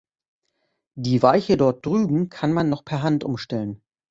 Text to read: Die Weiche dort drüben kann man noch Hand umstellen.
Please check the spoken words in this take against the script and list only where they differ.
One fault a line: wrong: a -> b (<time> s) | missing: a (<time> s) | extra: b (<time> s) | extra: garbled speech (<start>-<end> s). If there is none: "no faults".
extra: per (2.8 s)